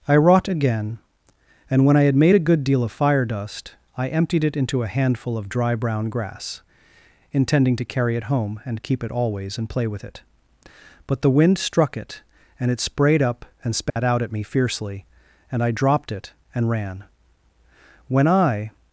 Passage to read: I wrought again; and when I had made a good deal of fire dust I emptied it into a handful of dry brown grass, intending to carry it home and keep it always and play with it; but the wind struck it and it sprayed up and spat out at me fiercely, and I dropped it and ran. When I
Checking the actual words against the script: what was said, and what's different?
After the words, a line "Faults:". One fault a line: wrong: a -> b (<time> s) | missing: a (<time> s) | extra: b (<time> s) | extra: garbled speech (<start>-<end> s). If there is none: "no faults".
I wrought again; and when I had made a good deal of fire dust I emptied it into a handful of dry brown grass, intending to carry it home and keep it always and play with it; but the wind struck it and it sprayed up and spat out at me fiercely, and I dropped it and ran. When I
Faults:
no faults